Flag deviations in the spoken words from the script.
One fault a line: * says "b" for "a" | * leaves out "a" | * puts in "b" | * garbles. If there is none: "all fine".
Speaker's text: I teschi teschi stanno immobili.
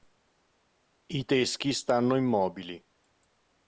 * leaves out "teschi"